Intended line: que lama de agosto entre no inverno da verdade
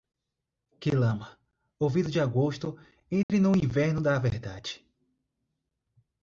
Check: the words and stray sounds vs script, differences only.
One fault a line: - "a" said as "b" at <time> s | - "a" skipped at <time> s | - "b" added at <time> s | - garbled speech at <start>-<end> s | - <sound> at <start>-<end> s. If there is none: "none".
- "ouvido" added at 1.8 s
- dropout at 3.2-3.3 s